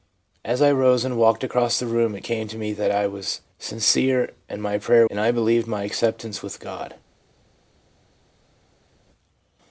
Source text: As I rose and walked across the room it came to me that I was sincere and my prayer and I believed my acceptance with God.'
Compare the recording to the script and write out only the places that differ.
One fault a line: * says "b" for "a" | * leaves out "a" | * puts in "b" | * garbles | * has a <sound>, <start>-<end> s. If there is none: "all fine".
all fine